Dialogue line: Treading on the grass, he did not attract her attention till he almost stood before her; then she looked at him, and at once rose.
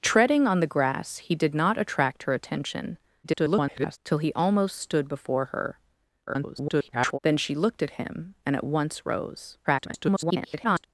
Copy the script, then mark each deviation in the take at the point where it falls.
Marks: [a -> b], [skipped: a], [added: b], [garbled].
Treading on the grass, he did not attract her attention [garbled] till he almost stood before her; [garbled] then she looked at him, and at once rose. [garbled]